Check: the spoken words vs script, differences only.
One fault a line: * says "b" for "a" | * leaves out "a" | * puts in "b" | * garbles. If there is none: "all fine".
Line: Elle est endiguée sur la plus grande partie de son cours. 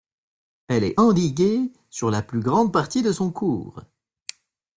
all fine